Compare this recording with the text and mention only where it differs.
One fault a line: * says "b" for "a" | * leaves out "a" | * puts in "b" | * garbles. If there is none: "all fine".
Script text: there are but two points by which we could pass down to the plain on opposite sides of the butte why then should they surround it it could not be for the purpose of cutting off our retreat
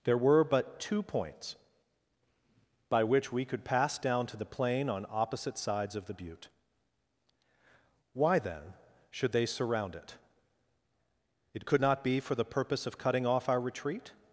* says "were" for "are"